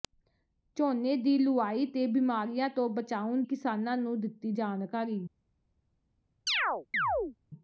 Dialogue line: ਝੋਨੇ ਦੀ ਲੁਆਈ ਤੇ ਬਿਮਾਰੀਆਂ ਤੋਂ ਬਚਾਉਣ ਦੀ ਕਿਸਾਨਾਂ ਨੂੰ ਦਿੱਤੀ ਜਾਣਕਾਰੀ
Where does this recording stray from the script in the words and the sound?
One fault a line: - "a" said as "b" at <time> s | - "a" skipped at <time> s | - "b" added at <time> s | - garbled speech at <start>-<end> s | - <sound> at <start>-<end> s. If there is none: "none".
- "ਦੀ" skipped at 3.4 s
- chirp at 6.5-7.4 s